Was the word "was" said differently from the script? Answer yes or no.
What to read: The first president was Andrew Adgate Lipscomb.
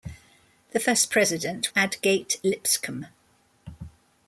yes